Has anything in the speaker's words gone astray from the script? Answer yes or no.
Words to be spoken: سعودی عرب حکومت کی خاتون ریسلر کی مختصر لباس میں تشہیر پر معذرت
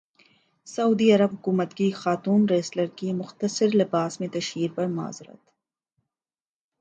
no